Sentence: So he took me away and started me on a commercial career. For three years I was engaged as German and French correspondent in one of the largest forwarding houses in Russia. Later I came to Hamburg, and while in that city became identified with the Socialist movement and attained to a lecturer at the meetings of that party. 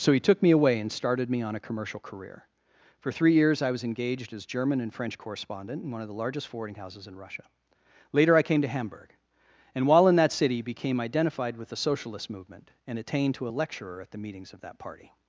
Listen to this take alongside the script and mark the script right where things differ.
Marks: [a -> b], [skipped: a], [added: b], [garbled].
So he took me away and started me on a commercial career. For three years I was engaged as German and French correspondent in one of the largest forwarding houses in Russia. Later I came to Hamburg, and while in that city became identified with the Socialist movement and attained to a lecturer at the meetings of that party.